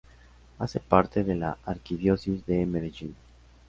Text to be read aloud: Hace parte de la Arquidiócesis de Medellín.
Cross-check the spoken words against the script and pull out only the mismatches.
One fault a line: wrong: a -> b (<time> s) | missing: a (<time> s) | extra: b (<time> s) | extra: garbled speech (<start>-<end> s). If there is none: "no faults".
no faults